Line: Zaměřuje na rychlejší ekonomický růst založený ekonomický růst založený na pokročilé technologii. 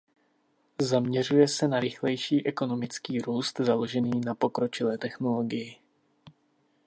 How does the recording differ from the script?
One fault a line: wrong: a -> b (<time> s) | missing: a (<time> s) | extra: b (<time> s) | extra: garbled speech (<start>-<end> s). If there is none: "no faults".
extra: se (1.5 s)
missing: ekonomický růst založený (4.2 s)